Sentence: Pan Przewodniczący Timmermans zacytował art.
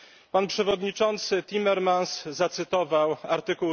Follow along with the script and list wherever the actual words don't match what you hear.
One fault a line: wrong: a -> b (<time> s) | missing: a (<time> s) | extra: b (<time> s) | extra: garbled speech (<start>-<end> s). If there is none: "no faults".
no faults